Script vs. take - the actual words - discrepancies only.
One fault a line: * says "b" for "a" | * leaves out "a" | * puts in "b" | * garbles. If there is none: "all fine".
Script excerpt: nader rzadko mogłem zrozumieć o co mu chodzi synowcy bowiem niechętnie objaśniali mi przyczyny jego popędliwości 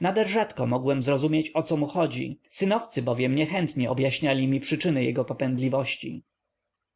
all fine